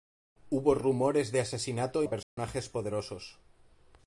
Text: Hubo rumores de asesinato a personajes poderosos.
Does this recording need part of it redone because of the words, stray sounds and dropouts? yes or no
yes